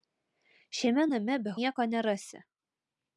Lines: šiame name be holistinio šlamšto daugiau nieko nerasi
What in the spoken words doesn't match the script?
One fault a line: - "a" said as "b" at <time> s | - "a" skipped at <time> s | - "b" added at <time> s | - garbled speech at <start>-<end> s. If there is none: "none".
- "holistinio šlamšto daugiau" skipped at 1.6 s